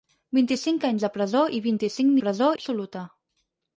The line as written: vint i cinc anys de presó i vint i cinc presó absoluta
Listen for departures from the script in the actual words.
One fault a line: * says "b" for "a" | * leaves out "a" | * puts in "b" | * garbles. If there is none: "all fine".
all fine